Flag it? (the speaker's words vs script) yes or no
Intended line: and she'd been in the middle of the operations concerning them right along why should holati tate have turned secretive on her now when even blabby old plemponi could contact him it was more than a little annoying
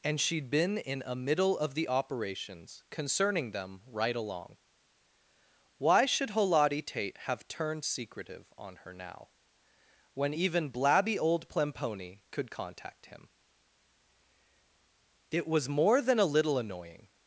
yes